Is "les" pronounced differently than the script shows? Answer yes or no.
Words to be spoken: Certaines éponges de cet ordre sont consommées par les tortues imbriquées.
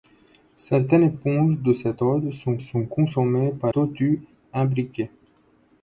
yes